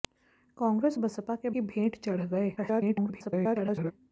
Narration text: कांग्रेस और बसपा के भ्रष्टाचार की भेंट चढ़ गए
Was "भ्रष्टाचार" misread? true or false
true